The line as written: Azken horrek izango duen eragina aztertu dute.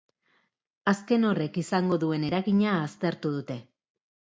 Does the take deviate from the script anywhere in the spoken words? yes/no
no